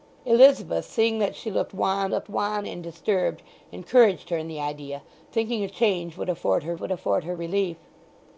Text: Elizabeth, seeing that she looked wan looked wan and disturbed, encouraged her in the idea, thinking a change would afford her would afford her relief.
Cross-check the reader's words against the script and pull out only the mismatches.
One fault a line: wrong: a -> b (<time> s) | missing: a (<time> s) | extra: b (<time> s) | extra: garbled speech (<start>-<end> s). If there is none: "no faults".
no faults